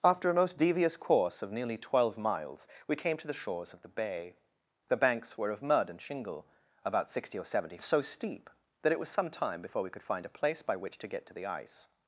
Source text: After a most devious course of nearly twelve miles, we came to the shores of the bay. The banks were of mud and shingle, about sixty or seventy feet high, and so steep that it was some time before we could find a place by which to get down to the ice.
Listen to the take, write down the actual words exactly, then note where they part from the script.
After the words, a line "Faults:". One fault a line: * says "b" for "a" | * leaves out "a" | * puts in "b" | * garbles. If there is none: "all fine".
After a most devious course of nearly twelve miles, we came to the shores of the bay. The banks were of mud and shingle, about sixty or seventy so steep that it was some time before we could find a place by which to get to the ice.
Faults:
* leaves out "feet high and"
* leaves out "down"